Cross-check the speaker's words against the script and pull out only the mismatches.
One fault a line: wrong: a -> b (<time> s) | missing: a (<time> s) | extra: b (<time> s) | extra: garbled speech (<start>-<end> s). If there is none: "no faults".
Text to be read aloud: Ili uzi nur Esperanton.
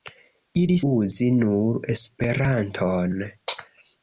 no faults